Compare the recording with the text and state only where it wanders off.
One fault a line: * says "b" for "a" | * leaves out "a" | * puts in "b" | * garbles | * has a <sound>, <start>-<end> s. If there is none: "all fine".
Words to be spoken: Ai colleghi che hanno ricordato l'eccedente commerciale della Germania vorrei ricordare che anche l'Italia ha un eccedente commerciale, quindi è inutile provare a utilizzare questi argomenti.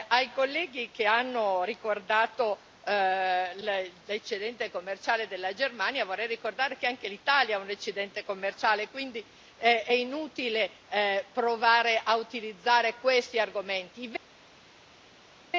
all fine